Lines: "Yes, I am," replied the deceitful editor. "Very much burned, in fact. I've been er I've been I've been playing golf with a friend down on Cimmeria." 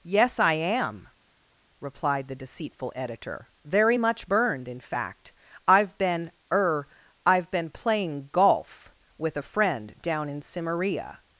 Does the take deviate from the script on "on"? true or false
true